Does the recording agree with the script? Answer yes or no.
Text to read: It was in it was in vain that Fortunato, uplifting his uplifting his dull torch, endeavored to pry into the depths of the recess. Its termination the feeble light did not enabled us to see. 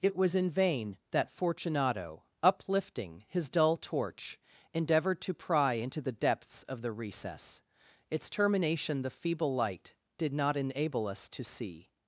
no